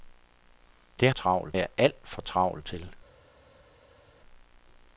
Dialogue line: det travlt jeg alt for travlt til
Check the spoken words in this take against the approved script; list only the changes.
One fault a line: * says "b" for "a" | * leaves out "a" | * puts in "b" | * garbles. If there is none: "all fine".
all fine